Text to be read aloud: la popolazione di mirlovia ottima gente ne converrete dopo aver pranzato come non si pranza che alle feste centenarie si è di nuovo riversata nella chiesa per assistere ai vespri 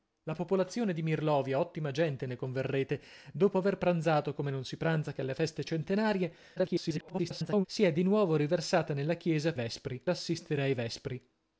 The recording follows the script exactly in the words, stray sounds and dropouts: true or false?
false